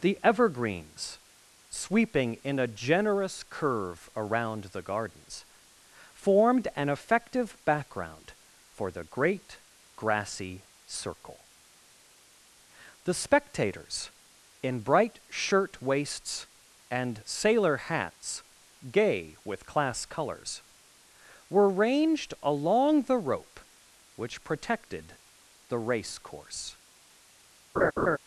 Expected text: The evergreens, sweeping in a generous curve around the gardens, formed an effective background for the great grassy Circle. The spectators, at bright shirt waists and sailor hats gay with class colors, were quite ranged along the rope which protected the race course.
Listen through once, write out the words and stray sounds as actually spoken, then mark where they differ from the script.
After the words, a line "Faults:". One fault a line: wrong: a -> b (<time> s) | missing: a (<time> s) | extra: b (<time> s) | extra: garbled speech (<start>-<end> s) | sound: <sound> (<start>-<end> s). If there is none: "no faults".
The evergreens, sweeping in a generous curve around the gardens, formed an effective background for the great grassy Circle. The spectators, in bright shirt waists and sailor hats gay with class colors, were ranged along the rope which protected the race course.
Faults:
wrong: at -> in (14.6 s)
missing: quite (21.7 s)
sound: laugh (27.8-28.2 s)